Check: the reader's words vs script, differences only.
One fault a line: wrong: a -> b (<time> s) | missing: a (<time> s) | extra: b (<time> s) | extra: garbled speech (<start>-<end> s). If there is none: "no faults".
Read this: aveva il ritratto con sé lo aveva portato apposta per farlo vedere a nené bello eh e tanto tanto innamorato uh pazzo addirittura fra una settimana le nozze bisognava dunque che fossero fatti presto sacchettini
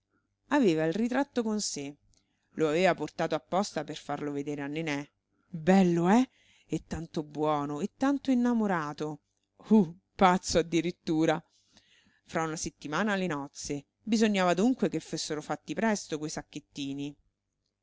extra: buono e (7.2 s)
extra: quei (16.2 s)